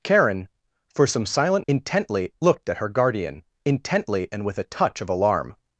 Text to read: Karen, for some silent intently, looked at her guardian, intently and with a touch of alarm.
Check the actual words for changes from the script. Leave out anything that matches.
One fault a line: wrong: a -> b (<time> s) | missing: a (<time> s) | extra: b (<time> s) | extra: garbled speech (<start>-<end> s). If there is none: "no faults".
no faults